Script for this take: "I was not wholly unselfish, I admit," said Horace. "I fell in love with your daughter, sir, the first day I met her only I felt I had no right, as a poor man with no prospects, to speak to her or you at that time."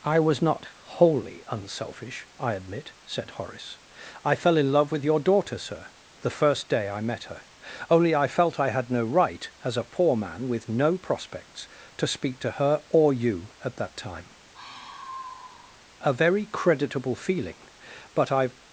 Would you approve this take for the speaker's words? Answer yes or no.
no